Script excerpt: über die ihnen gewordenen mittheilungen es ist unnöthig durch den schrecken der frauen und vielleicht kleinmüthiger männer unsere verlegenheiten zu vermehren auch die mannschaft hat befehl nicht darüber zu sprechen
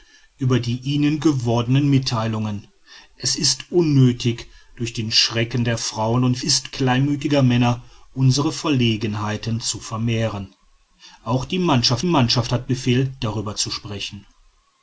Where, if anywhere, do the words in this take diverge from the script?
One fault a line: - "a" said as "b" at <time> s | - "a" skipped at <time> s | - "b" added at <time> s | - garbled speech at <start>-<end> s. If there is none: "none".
- "vielleicht" said as "ist" at 6.4 s
- "mannschaft" added at 12.0 s
- "nicht" skipped at 13.1 s